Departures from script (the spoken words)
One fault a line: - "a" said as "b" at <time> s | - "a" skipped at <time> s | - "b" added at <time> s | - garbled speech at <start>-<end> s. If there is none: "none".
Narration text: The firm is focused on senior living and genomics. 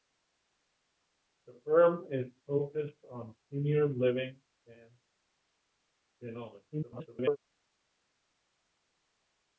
- garbled speech at 6.7-7.4 s